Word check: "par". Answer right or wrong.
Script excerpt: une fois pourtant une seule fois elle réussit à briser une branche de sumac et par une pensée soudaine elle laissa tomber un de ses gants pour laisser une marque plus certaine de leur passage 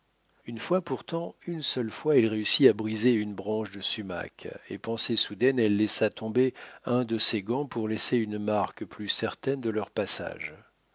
wrong